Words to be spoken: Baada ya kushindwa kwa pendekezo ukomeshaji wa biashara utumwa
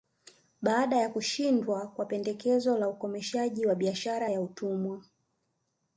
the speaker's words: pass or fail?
fail